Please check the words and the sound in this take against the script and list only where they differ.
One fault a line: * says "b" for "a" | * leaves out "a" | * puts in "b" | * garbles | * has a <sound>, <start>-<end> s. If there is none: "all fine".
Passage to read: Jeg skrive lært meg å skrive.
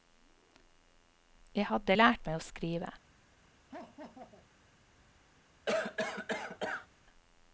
* says "hadde" for "skrive"
* has a laugh, 3.7-4.5 s
* has a cough, 5.7-6.9 s